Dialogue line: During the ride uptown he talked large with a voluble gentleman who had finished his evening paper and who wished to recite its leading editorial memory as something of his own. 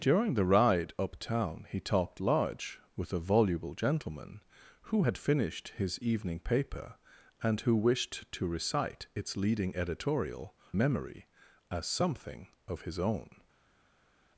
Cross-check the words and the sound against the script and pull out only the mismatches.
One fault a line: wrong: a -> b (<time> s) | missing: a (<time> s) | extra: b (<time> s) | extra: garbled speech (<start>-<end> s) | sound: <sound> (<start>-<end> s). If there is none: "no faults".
no faults